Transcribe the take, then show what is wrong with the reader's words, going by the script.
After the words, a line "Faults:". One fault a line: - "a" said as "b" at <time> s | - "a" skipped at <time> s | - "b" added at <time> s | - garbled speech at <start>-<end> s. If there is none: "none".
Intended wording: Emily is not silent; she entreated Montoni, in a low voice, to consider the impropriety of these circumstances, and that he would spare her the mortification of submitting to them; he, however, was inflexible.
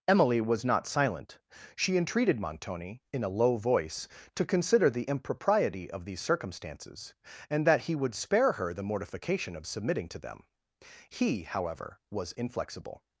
Emily was not silent; she entreated Montoni, in a low voice, to consider the impropriety of these circumstances, and that he would spare her the mortification of submitting to them; he, however, was inflexible.
Faults:
- "is" said as "was" at 0.4 s